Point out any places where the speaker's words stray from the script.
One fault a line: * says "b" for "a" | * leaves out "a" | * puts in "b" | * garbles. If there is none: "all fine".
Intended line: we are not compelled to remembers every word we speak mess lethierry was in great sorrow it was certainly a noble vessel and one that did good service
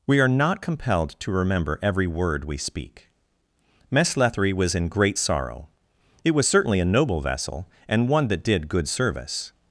* says "remember" for "remembers"